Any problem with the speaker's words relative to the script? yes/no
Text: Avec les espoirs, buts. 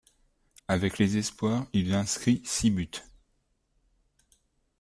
yes